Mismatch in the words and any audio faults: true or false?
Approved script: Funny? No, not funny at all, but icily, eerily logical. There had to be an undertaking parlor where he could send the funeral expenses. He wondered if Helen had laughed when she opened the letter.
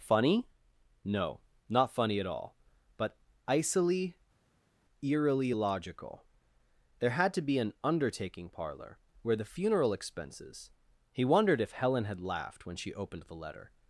true